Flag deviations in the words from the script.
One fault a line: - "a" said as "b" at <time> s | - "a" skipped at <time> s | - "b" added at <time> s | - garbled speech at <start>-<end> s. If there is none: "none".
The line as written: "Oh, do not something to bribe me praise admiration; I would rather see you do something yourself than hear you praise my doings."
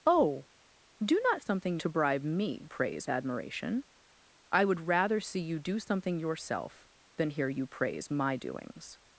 none